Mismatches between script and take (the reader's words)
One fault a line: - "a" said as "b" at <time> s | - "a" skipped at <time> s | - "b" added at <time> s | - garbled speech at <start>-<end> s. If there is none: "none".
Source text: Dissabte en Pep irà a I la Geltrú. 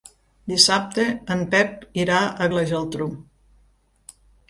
none